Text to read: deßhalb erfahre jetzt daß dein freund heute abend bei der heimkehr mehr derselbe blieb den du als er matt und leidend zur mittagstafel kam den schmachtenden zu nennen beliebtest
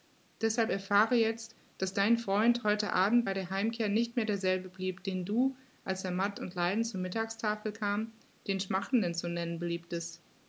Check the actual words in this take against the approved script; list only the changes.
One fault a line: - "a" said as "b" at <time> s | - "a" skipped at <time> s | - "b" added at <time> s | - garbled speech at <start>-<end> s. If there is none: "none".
- "nicht" added at 3.9 s